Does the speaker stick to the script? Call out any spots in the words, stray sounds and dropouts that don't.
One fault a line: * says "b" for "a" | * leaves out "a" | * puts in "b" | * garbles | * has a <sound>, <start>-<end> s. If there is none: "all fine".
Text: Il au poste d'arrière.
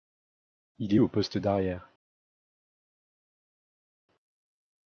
all fine